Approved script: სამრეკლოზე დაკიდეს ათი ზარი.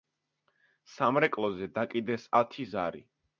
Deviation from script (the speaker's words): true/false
false